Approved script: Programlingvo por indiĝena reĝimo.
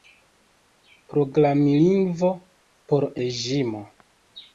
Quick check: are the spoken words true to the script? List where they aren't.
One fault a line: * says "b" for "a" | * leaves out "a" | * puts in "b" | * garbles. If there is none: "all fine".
* leaves out "indiĝena"